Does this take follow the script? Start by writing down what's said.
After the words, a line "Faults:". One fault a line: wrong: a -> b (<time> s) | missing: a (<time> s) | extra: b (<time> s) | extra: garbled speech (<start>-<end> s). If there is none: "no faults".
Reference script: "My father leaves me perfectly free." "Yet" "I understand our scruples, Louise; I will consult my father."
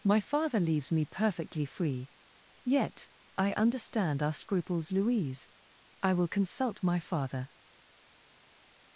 "My father leaves me perfectly free." "Yet" "I understand our scruples, Louise; I will consult my father."
Faults:
no faults